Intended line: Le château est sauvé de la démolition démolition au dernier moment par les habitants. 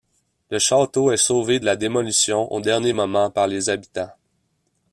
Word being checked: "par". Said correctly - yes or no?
yes